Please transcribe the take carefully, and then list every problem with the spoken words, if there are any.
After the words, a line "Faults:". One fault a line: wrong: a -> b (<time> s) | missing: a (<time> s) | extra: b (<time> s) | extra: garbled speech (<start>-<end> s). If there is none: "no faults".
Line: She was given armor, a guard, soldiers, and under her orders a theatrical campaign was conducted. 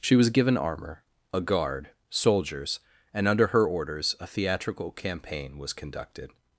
She was given armor, a guard, soldiers, and under her orders a theatrical campaign was conducted.
Faults:
no faults